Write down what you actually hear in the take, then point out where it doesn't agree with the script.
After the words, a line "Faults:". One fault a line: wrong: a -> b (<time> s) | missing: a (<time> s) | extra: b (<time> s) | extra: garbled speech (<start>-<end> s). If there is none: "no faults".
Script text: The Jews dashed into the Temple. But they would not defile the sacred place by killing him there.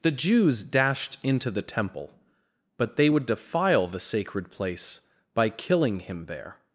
The Jews dashed into the Temple. But they would defile the sacred place by killing him there.
Faults:
missing: not (3.3 s)